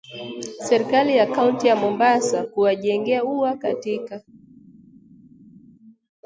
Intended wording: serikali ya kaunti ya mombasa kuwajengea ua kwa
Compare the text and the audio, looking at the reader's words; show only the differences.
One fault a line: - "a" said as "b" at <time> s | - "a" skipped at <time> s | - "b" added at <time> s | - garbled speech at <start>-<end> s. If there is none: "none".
- "kwa" said as "katika" at 3.5 s